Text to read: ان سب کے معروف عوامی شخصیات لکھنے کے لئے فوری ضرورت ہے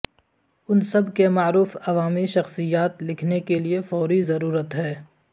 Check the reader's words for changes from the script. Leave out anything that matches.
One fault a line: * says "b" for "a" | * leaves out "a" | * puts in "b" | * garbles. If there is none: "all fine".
all fine